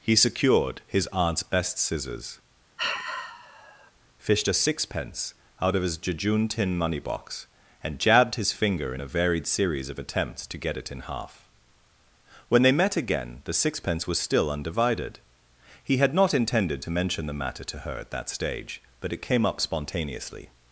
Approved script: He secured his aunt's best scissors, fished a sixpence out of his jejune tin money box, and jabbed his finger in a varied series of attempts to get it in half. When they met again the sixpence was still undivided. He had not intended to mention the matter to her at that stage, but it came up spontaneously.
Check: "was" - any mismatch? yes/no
no